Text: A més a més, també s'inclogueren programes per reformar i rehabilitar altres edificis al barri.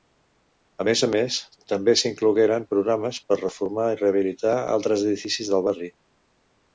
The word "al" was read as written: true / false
false